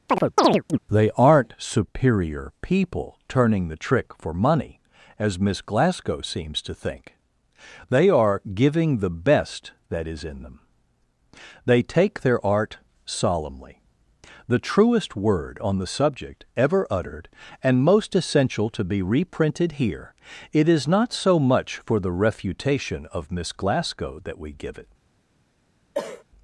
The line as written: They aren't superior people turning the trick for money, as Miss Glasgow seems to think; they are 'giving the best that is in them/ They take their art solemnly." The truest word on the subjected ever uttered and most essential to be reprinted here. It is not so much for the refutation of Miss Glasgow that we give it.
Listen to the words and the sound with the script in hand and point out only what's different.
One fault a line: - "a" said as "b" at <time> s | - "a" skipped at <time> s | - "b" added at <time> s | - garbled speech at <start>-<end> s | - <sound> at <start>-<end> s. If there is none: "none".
- chirp at 0.1-0.8 s
- "subjected" said as "subject" at 15.9 s
- cough at 25.9-26.2 s